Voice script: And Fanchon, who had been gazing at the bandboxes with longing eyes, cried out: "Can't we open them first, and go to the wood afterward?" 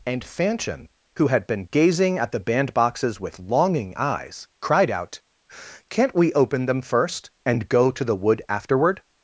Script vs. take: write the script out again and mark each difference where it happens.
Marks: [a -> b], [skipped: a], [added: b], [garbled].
And Fanchon, who had been gazing at the bandboxes with longing eyes, cried out: "Can't we open them first, and go to the wood afterward?"